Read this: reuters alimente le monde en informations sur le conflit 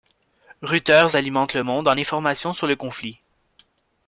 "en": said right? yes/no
yes